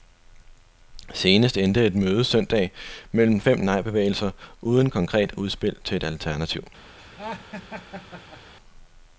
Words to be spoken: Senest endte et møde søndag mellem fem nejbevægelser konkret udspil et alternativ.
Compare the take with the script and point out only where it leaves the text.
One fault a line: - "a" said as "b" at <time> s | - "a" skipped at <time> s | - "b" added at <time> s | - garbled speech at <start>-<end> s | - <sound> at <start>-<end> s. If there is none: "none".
- "uden" added at 4.6 s
- "til" added at 5.8 s
- laugh at 7.0-8.5 s